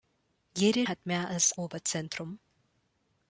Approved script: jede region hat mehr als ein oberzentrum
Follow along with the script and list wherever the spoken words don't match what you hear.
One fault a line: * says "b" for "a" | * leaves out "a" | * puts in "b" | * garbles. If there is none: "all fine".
* leaves out "region"
* leaves out "ein"